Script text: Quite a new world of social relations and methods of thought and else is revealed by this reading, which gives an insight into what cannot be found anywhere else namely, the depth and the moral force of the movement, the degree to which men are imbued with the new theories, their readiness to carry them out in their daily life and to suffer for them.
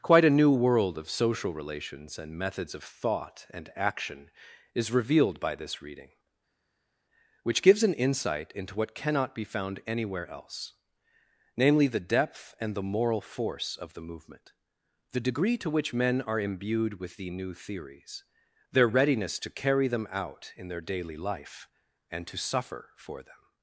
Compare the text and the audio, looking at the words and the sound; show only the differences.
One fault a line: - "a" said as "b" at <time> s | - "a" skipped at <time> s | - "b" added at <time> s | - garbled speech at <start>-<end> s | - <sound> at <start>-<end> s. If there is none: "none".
- "else" said as "action" at 3.8 s